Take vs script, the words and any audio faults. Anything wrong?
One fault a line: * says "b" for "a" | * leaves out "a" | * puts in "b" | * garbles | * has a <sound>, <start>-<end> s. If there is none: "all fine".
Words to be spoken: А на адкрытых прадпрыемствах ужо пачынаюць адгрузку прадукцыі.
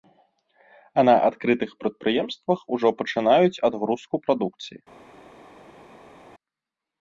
all fine